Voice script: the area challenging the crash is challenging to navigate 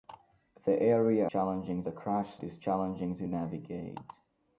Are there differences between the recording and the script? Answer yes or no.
no